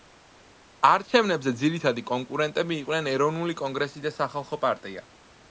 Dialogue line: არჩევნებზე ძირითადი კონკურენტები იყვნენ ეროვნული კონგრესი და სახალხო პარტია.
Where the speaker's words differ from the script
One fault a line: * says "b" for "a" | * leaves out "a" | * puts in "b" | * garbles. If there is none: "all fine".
all fine